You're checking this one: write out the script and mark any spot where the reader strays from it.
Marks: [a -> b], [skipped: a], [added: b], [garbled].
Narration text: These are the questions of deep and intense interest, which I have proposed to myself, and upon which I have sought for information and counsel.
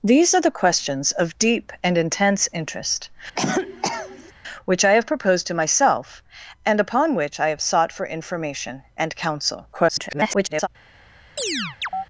These are the questions of deep and intense interest, which I have proposed to myself, and upon which I have sought for information and counsel. [garbled]